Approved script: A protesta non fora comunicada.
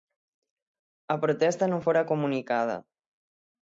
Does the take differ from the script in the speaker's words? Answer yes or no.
no